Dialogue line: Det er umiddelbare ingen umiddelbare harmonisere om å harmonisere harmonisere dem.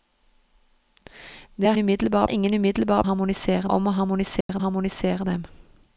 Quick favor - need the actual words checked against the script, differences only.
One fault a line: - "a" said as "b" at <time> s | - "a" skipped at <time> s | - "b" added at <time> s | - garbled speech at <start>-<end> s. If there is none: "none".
none